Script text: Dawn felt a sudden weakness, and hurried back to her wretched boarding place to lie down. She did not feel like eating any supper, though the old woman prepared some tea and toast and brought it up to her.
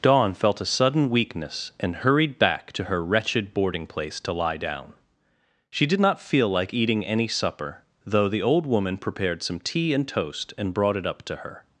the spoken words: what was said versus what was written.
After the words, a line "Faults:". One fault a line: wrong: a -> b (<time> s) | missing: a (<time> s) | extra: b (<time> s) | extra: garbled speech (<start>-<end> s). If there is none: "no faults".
Dawn felt a sudden weakness, and hurried back to her wretched boarding place to lie down. She did not feel like eating any supper, though the old woman prepared some tea and toast and brought it up to her.
Faults:
no faults